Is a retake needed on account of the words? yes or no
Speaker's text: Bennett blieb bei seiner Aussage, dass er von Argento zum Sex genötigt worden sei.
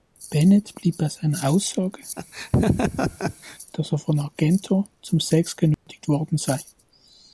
no